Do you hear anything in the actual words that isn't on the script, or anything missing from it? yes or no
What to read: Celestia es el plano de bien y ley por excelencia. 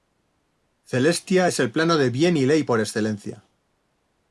no